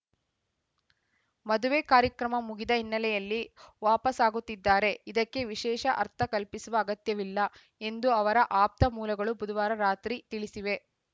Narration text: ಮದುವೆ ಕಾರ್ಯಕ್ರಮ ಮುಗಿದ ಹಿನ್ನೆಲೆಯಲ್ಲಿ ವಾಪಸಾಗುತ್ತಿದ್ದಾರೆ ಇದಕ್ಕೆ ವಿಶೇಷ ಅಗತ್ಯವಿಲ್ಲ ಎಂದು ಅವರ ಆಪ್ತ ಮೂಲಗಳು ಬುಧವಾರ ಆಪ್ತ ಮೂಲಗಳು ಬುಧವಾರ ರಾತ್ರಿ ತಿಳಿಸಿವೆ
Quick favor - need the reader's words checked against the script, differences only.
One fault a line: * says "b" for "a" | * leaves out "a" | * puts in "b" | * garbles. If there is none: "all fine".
* puts in "ಅರ್ಥ ಕಲ್ಪಿಸುವ"
* leaves out "ಆಪ್ತ ಮೂಲಗಳು ಬುಧವಾರ"